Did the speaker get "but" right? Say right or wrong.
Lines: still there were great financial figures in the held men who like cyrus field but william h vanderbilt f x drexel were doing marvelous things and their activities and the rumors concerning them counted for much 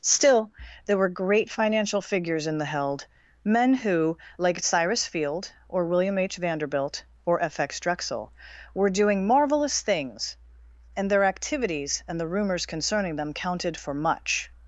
wrong